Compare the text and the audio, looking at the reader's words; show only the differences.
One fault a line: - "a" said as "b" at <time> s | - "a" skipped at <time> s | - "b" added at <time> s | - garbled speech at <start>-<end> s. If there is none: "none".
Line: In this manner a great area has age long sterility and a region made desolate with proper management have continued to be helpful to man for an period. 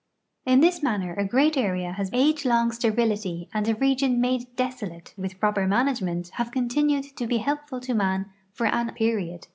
none